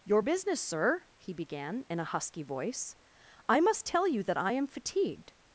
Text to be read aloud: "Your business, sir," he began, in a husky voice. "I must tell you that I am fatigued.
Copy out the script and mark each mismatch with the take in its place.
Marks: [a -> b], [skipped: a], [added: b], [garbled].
"Your business, sir," he began, in a husky voice. "I must tell you that I am fatigued.